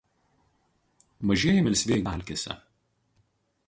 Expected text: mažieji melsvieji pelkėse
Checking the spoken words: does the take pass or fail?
pass